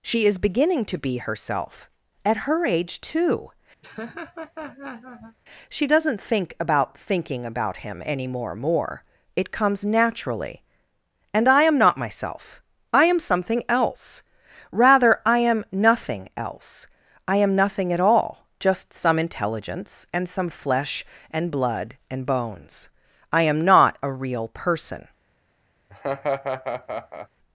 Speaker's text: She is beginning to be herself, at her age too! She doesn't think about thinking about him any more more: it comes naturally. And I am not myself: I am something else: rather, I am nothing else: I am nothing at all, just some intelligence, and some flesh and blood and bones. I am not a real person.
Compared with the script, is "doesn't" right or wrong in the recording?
right